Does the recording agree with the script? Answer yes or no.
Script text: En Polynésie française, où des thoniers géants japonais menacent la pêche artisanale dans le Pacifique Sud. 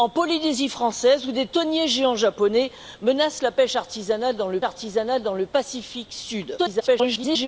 no